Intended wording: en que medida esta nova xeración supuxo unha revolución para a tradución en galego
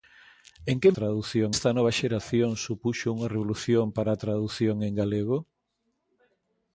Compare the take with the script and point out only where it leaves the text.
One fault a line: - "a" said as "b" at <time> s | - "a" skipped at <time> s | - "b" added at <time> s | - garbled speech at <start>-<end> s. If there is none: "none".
- "medida" said as "tradución" at 1.0 s